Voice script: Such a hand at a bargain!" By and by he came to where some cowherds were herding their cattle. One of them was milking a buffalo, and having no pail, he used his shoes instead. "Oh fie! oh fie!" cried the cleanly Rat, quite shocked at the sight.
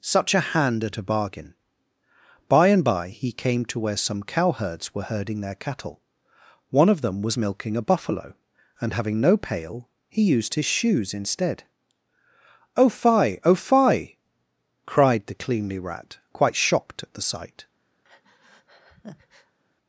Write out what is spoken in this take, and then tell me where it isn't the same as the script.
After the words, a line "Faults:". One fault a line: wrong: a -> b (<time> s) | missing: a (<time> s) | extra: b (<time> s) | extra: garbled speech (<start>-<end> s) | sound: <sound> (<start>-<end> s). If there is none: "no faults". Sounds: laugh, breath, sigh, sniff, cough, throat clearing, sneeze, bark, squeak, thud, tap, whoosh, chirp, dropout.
Such a hand at a bargain!" By and by he came to where some cowherds were herding their cattle. One of them was milking a buffalo, and having no pail, he used his shoes instead. "Oh fie! oh fie!" cried the cleanly Rat, quite shocked at the sight.
Faults:
sound: breath (18.0-19.6 s)